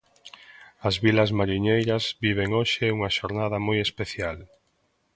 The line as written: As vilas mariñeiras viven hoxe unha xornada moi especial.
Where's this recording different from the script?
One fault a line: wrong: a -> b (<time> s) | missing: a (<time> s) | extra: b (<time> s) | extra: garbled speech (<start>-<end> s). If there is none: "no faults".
no faults